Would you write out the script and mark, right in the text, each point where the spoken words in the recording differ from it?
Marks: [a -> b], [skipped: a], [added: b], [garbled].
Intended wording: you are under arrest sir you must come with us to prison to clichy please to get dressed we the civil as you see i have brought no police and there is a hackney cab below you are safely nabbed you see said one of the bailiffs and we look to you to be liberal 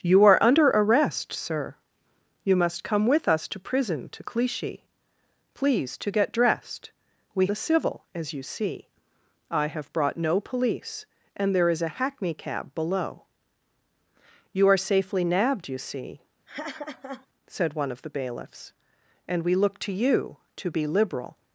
you are under arrest sir you must come with us to prison to clichy please to get dressed we the civil as you see i have brought no police and there is a hackney cab below you are safely nabbed you see said one of the bailiffs and we look to you to be liberal